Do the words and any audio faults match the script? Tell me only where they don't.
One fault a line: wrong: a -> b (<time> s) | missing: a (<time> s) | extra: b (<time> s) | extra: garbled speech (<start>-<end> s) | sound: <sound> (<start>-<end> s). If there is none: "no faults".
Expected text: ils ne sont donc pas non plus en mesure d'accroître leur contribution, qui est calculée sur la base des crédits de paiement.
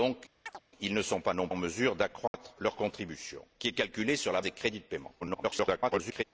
sound: chirp (0.5-0.6 s)
missing: plus (1.5 s)
sound: dropout (2.3-2.3 s)
missing: base (4.4 s)
extra: garbled speech (5.2-6.2 s)